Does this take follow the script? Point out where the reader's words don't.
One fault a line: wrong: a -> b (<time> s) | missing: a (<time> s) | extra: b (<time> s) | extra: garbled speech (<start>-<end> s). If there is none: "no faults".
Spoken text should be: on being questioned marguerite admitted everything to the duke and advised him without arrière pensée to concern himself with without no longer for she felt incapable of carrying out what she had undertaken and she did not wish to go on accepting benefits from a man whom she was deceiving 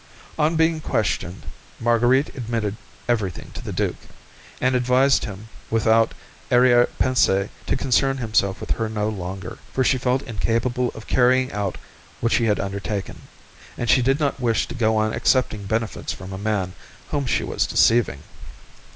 wrong: without -> her (8.7 s)